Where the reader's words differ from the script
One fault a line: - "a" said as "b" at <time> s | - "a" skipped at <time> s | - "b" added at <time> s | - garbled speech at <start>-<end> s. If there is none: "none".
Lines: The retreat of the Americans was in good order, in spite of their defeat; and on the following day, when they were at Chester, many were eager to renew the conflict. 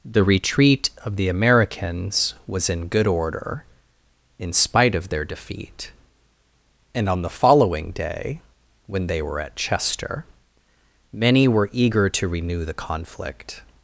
none